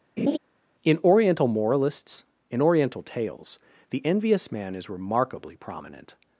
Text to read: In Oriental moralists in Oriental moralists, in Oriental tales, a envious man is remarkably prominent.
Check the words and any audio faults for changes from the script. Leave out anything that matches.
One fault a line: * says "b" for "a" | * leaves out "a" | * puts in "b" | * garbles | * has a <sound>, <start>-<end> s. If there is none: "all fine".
* has a laugh, 0.2-0.4 s
* leaves out "moralists in Oriental"
* says "the" for "a"